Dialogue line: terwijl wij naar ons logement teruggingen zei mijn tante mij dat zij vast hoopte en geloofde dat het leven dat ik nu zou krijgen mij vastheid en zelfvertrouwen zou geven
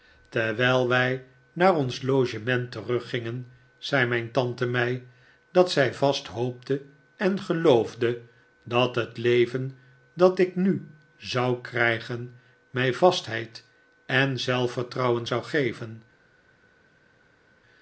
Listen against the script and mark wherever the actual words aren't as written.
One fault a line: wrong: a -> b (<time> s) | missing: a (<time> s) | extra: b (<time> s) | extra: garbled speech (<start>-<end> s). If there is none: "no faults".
no faults